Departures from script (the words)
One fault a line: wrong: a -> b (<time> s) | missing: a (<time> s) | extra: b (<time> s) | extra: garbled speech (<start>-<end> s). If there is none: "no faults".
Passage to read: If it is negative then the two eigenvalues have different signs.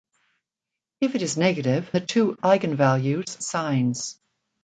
missing: then (1.9 s)
missing: have different (3.4 s)